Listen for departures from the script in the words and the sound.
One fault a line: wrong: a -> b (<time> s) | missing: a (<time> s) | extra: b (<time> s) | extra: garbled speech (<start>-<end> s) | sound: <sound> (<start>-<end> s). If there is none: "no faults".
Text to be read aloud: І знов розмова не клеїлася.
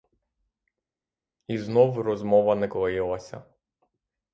no faults